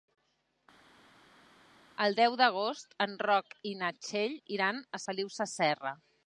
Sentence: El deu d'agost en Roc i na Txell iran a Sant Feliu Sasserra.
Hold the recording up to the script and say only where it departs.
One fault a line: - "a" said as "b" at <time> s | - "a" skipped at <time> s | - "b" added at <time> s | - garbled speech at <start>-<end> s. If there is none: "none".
- "Sant" skipped at 5.1 s